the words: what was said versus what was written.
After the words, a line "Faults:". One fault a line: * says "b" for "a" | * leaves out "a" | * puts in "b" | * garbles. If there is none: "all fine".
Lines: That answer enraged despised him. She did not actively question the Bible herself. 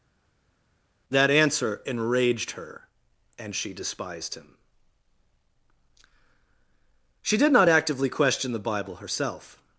That answer enraged her, and she despised him. She did not actively question the Bible herself.
Faults:
* puts in "her and she"